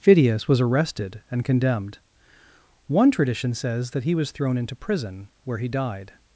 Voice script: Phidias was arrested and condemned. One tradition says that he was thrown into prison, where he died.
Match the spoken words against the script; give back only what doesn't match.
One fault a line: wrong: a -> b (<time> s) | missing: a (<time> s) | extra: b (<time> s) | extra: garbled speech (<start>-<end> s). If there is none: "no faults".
no faults